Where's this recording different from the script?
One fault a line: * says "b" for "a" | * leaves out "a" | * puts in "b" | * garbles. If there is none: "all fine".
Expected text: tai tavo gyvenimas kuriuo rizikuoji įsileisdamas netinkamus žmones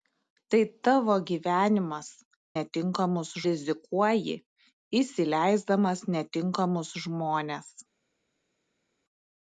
* says "netinkamus" for "kuriuo"